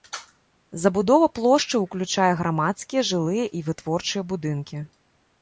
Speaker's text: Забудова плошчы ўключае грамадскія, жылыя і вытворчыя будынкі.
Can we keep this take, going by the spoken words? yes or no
yes